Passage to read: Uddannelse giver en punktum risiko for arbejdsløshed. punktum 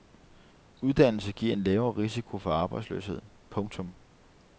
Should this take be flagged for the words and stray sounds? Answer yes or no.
yes